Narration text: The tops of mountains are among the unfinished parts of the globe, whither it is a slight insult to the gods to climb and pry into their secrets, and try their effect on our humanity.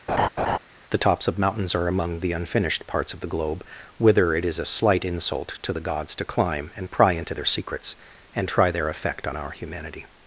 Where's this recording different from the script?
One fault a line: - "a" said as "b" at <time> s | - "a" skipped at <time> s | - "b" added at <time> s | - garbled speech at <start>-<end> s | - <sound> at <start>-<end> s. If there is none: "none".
- laugh at 0.1-0.6 s